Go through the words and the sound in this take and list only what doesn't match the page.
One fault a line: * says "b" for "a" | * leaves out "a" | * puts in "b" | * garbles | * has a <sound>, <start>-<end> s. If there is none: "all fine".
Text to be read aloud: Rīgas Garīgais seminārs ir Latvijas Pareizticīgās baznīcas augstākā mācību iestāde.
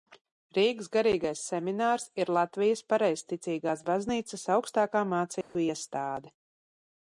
* has a dropout, 5.4-5.5 s